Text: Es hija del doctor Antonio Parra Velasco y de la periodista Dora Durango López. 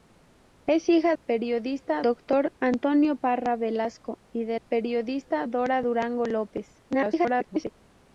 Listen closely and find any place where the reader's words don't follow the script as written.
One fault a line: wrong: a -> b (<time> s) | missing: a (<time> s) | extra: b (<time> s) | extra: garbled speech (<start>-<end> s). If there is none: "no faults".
wrong: del -> periodista (1.1 s)
missing: la (4.6 s)
extra: garbled speech (6.9-7.7 s)